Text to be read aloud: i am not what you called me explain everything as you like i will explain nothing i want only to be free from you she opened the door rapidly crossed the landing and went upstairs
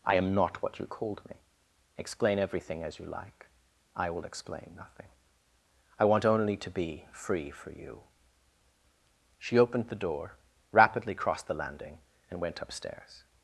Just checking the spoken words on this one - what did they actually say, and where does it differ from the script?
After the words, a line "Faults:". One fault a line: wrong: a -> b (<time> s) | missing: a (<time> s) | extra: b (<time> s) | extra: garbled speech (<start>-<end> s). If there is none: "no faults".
i am not what you called me explain everything as you like i will explain nothing i want only to be free for you she opened the door rapidly crossed the landing and went upstairs
Faults:
wrong: from -> for (7.5 s)